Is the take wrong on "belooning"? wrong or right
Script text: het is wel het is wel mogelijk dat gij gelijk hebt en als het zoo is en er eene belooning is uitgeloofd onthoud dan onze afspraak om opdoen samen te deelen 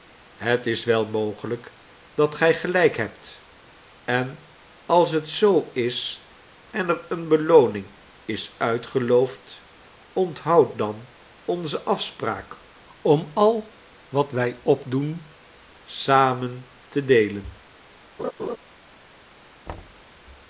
right